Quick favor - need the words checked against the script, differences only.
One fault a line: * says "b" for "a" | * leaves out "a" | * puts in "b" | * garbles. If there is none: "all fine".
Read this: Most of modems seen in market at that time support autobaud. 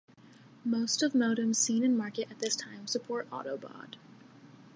* says "this" for "that"